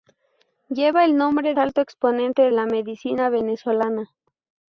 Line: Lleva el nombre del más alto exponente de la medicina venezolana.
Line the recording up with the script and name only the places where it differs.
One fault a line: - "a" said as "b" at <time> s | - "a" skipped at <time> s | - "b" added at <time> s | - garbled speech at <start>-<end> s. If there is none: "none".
- "del más" skipped at 1.5 s
- "de" skipped at 2.5 s